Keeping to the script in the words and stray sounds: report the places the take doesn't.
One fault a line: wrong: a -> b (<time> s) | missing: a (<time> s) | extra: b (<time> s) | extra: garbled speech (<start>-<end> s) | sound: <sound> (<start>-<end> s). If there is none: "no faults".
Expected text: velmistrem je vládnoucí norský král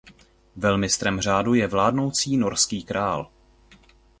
extra: řádu (1.2 s)